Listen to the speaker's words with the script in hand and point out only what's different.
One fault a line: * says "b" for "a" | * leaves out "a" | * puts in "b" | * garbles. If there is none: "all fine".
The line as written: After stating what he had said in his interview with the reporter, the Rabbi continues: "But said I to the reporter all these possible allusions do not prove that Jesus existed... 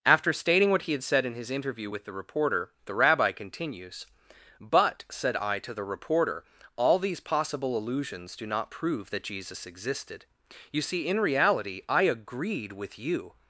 * puts in "You see in reality I agreed with you"